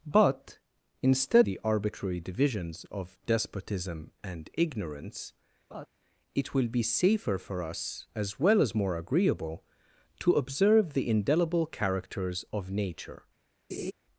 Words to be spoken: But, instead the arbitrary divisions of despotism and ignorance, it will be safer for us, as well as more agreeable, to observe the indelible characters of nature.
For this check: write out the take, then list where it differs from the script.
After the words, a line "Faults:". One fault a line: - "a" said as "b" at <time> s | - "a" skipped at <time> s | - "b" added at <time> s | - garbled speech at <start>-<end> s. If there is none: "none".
But, instead the arbitrary divisions of despotism and ignorance, it will be safer for us, as well as more agreeable, to observe the indelible characters of nature.
Faults:
none